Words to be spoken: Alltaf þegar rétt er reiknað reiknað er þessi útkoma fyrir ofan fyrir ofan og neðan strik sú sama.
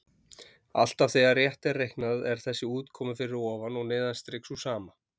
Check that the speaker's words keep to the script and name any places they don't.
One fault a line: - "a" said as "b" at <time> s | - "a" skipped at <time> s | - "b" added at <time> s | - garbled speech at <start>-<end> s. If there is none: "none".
- "reiknað" skipped at 2.2 s
- "fyrir ofan" skipped at 3.8 s